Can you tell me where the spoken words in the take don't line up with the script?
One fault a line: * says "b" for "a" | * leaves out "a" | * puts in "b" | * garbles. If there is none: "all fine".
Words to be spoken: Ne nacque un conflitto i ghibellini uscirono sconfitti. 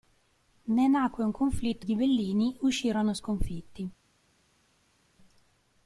all fine